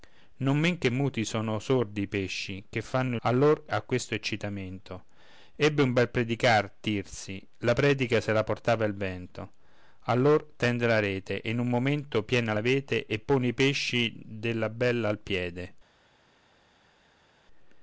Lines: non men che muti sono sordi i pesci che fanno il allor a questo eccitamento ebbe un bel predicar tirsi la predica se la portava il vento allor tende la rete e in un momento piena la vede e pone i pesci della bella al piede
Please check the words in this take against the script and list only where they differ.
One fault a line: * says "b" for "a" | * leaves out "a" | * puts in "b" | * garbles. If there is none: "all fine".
all fine